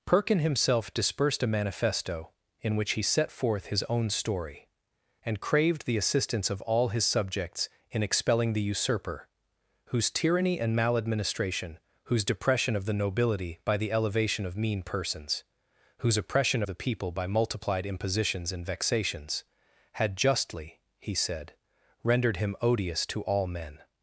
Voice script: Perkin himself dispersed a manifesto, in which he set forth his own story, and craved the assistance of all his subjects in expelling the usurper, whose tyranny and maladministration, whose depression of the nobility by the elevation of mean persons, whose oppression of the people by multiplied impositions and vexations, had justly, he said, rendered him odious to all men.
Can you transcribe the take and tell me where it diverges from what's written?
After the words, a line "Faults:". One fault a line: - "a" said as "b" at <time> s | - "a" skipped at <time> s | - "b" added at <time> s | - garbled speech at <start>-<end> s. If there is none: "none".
Perkin himself dispersed a manifesto, in which he set forth his own story, and craved the assistance of all his subjects in expelling the usurper, whose tyranny and maladministration, whose depression of the nobility by the elevation of mean persons, whose oppression the people by multiplied impositions and vexations, had justly, he said, rendered him odious to all men.
Faults:
- "of" skipped at 16.6 s